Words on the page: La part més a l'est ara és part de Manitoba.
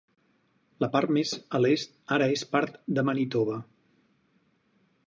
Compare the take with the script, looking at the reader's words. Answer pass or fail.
pass